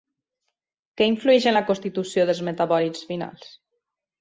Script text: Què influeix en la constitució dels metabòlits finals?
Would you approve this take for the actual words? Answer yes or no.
yes